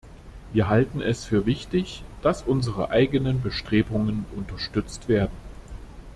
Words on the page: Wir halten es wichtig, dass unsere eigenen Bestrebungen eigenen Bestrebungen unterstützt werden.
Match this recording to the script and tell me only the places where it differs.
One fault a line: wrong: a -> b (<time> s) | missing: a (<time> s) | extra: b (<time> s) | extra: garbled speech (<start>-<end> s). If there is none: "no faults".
extra: für (1.2 s)
missing: eigenen Bestrebungen (4.2 s)